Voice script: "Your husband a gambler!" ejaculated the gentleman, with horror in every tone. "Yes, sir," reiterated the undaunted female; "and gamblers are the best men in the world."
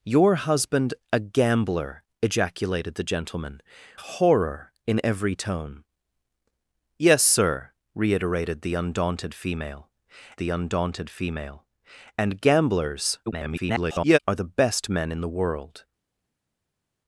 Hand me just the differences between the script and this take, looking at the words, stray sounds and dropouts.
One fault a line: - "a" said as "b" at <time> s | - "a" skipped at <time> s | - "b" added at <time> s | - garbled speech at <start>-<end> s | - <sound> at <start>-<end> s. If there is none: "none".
- "with" skipped at 3.6 s
- "the undaunted female" added at 10.4 s
- garbled speech at 13.3-14.2 s